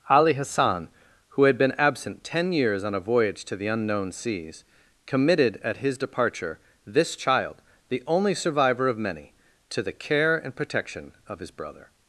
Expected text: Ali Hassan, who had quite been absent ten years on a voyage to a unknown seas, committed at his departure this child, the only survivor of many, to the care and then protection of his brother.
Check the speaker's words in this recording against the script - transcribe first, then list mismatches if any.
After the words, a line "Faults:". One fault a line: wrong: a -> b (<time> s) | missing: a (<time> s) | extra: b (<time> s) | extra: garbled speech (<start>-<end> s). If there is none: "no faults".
Ali Hassan, who had been absent ten years on a voyage to the unknown seas, committed at his departure this child, the only survivor of many, to the care and protection of his brother.
Faults:
missing: quite (1.6 s)
wrong: a -> the (3.5 s)
missing: then (10.6 s)